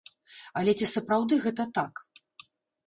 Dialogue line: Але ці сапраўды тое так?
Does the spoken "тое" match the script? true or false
false